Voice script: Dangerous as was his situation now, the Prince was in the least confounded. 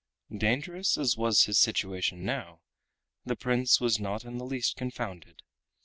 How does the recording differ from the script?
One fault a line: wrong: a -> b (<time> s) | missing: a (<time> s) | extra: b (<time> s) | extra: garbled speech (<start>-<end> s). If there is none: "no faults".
extra: not (4.0 s)